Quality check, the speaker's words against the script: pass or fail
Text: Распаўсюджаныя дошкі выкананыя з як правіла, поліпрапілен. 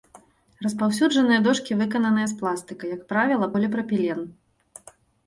fail